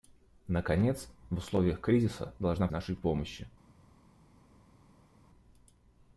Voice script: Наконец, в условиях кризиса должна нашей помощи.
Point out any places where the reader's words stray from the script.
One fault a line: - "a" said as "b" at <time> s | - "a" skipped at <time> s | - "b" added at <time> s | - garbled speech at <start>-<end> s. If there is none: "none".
none